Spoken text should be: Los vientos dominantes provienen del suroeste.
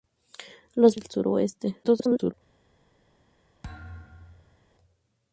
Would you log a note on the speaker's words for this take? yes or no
yes